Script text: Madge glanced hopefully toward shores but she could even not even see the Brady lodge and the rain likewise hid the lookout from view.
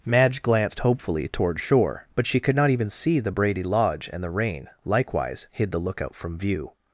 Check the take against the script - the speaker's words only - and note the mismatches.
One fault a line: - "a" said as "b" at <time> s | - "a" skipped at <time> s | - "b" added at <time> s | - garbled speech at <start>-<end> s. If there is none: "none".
- "shores" said as "shore" at 1.6 s
- "even" skipped at 2.5 s